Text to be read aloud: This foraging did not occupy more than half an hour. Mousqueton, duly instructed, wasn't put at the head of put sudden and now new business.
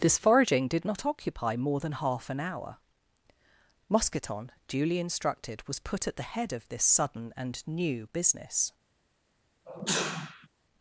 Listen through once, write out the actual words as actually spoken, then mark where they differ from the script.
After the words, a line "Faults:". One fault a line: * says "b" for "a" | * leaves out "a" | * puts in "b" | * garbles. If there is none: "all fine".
This foraging did not occupy more than half an hour. Mousqueton, duly instructed, was put at the head of this sudden and new business.
Faults:
* says "was" for "wasn't"
* says "this" for "put"
* leaves out "now"